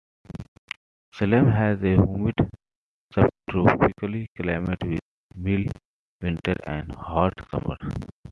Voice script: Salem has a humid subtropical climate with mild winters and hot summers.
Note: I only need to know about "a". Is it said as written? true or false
true